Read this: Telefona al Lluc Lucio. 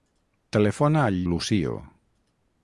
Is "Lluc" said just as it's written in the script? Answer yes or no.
no